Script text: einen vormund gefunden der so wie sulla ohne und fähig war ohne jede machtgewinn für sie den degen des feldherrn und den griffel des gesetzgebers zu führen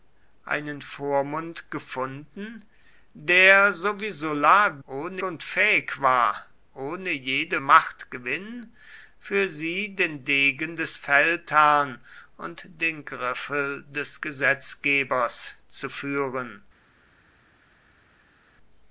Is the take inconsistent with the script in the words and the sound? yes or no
no